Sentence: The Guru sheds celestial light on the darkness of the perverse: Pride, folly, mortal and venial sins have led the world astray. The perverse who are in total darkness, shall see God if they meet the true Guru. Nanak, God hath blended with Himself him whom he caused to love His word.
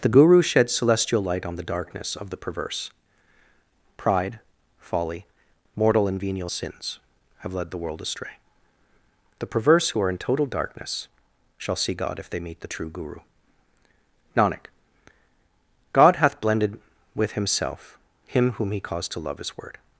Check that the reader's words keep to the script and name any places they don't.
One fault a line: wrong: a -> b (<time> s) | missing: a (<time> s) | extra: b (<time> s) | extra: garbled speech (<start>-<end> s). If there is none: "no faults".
no faults